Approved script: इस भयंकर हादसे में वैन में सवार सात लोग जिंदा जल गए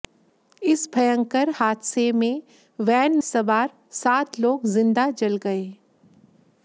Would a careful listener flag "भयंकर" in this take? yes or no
no